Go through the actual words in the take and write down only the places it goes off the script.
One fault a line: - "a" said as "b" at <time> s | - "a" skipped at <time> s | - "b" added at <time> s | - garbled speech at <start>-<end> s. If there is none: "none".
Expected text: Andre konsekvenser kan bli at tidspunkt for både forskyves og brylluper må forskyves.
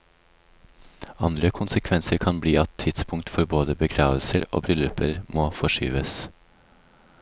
- "forskyves" said as "begravelser" at 3.8 s